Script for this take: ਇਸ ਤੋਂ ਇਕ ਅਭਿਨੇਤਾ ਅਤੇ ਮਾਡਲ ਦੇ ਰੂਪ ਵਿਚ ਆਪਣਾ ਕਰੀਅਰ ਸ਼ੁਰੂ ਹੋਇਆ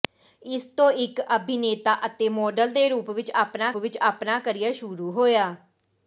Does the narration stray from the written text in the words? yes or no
yes